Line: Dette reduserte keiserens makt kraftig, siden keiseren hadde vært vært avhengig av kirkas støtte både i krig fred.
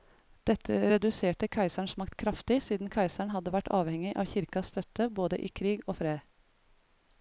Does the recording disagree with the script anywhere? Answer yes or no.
yes